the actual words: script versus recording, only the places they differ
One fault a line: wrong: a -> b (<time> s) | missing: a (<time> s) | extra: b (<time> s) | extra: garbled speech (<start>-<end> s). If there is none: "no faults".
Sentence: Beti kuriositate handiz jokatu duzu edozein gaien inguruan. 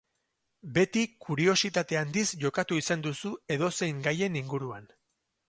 extra: izan (2.8 s)